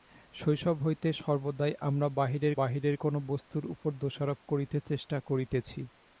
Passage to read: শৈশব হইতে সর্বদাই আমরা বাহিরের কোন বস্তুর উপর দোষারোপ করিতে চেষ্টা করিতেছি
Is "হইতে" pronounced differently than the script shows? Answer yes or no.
no